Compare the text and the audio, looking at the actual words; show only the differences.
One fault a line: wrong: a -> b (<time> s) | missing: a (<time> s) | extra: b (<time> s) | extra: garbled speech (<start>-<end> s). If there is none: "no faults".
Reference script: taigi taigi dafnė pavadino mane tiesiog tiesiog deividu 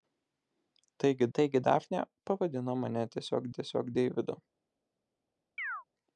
no faults